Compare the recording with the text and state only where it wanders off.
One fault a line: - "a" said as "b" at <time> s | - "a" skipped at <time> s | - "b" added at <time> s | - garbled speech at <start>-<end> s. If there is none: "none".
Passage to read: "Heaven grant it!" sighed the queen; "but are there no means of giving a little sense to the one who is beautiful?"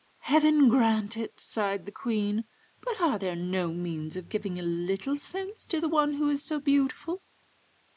- "so" added at 6.4 s